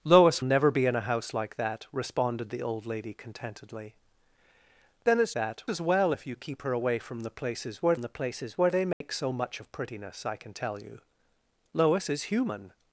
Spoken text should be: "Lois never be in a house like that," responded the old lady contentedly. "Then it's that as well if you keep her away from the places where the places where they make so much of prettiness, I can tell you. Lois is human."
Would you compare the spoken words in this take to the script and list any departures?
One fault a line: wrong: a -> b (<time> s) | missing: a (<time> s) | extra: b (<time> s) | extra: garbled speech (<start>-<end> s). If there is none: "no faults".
no faults